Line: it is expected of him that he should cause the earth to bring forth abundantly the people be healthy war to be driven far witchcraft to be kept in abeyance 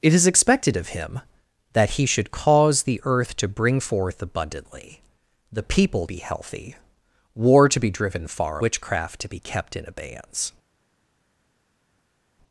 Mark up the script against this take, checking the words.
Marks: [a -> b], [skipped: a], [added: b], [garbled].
it is expected of him that he should cause the earth to bring forth abundantly the people be healthy war to be driven far witchcraft to be kept in abeyance